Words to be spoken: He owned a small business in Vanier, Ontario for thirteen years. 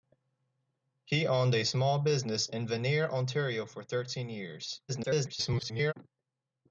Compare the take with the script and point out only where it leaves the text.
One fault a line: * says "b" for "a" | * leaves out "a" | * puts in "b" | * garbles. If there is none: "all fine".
* garbles